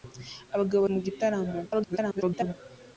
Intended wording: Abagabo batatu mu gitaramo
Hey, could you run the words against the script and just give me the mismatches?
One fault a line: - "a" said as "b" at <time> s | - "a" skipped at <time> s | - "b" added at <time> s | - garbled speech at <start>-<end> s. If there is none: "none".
- "batatu" skipped at 0.8 s
- garbled speech at 1.6-2.5 s